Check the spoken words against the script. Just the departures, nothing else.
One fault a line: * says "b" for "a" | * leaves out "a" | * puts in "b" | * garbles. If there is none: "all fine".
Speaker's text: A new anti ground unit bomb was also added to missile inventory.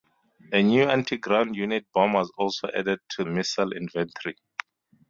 all fine